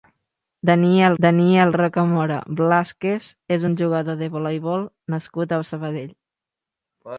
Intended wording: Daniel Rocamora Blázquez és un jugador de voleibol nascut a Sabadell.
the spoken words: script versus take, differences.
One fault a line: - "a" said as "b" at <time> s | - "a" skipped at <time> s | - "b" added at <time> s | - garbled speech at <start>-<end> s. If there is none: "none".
- "daniel" added at 1.2 s